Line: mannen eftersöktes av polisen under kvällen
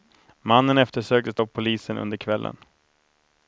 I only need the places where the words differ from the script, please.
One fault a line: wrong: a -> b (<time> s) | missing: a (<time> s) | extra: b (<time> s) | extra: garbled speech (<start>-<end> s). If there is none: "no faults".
no faults